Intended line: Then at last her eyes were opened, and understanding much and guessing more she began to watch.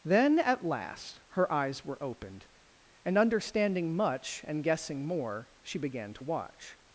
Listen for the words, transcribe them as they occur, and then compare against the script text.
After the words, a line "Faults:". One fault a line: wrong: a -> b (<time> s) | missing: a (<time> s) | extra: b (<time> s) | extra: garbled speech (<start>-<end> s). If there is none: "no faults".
Then at last her eyes were opened, and understanding much and guessing more she began to watch.
Faults:
no faults